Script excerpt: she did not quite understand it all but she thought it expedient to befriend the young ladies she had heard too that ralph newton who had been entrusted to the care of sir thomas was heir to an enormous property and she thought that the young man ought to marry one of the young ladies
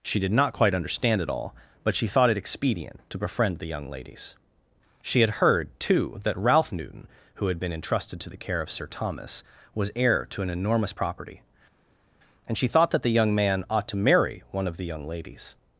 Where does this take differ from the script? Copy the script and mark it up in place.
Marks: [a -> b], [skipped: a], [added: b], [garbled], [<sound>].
she did not quite understand it all but she thought it expedient to befriend the young ladies she had heard too that ralph newton who had been entrusted to the care of sir thomas was heir to an enormous property and she thought that the young man ought to marry one of the young ladies